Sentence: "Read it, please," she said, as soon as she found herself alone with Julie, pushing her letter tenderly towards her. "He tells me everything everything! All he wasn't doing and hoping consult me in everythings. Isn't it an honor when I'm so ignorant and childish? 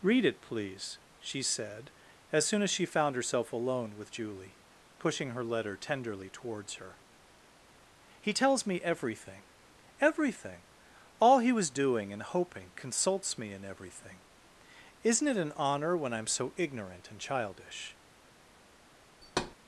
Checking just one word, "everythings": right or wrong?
wrong